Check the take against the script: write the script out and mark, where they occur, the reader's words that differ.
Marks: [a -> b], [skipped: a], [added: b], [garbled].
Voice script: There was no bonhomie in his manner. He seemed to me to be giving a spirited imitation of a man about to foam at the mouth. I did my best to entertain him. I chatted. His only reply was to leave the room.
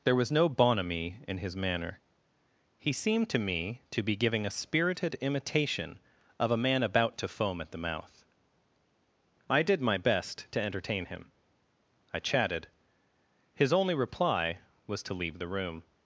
There was no bonhomie in his manner. He seemed to me to be giving a spirited imitation of a man about to foam at the mouth. I did my best to entertain him. I chatted. His only reply was to leave the room.